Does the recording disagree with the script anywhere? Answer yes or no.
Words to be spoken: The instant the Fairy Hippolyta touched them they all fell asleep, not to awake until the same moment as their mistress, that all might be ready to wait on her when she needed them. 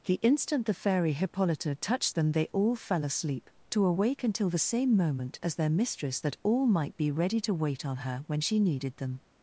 yes